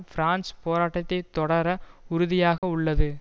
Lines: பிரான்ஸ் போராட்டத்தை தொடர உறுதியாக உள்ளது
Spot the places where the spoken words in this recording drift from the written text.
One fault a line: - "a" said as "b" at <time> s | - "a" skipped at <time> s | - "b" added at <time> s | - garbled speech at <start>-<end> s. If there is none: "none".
none